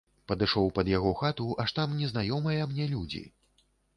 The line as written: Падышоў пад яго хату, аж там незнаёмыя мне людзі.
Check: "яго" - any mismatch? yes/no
no